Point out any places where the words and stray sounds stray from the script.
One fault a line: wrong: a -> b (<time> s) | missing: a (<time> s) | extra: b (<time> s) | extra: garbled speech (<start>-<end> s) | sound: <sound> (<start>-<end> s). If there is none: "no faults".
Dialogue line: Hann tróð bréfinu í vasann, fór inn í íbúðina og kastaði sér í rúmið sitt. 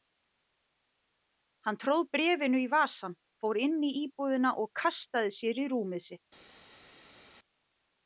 no faults